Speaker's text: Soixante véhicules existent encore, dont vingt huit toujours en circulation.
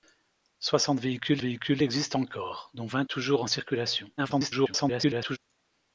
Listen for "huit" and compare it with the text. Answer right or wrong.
wrong